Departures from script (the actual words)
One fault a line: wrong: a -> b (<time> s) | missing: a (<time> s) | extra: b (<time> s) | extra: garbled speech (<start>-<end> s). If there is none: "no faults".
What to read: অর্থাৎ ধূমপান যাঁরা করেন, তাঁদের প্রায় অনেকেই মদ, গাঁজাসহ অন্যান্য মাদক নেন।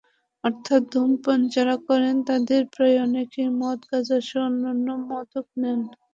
no faults